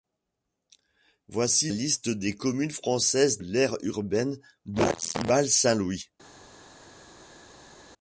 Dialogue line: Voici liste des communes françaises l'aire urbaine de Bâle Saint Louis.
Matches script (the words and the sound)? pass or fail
pass